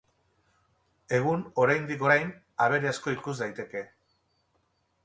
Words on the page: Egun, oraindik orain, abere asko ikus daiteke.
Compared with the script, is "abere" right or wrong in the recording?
right